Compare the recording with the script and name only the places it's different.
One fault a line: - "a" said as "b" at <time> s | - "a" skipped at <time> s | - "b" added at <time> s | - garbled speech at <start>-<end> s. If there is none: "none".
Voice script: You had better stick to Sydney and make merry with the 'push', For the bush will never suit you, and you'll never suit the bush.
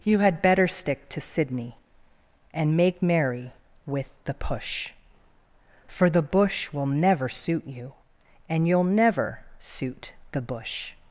none